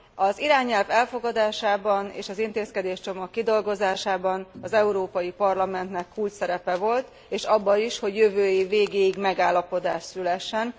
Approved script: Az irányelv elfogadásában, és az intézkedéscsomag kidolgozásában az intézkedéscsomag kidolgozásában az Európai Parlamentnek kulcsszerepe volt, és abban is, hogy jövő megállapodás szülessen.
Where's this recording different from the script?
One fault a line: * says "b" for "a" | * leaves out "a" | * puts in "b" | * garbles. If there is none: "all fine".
* leaves out "intézkedéscsomag kidolgozásában az"
* puts in "év végéig"